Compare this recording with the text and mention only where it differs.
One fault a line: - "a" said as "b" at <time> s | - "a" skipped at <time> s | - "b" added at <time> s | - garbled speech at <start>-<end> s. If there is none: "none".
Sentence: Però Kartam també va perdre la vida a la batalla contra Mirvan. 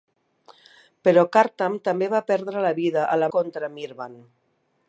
- "batalla" skipped at 3.3 s